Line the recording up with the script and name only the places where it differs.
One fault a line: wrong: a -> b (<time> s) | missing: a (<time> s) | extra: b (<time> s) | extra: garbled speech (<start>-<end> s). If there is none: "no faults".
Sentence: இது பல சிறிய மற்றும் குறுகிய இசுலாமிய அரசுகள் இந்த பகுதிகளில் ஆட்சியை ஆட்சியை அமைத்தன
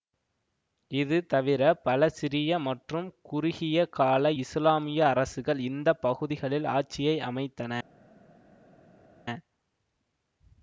extra: தவிர (1.2 s)
extra: கால (3.9 s)
missing: ஆட்சியை (7.2 s)